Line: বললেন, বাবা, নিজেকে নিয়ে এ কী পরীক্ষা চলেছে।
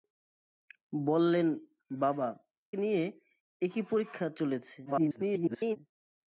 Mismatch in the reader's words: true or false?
true